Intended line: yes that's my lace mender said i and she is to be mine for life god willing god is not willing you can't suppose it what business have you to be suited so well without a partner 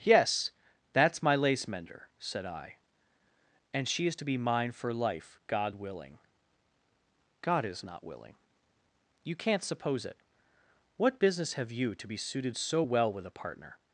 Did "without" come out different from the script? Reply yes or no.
yes